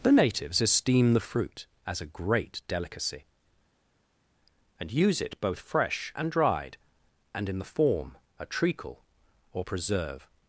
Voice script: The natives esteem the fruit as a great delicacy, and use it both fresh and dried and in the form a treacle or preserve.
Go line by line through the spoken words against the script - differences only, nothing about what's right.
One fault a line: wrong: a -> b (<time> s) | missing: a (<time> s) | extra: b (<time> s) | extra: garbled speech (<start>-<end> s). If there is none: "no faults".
no faults